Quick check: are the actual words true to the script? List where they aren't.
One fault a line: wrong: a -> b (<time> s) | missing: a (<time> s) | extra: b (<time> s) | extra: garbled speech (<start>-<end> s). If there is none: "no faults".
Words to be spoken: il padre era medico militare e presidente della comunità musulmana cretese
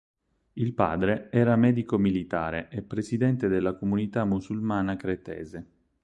no faults